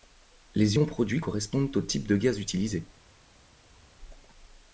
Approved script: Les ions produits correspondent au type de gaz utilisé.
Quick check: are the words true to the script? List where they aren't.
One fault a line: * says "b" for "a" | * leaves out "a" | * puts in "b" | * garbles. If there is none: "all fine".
all fine